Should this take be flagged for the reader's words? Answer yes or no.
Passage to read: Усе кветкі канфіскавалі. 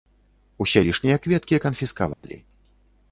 yes